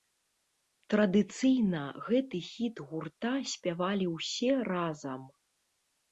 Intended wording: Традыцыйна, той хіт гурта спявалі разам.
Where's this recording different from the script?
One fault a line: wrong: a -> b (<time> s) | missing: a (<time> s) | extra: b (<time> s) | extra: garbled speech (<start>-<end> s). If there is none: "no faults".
wrong: той -> гэты (2.1 s)
extra: ўсе (4.2 s)